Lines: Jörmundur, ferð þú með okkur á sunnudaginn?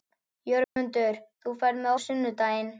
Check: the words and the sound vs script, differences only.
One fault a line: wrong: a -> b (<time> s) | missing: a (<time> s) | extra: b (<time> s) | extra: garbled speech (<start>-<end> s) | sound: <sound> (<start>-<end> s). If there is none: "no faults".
sound: dropout (0.6-0.8 s)
missing: okkur (1.9 s)